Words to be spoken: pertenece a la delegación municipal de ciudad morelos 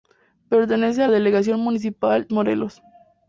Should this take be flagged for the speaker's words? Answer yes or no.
yes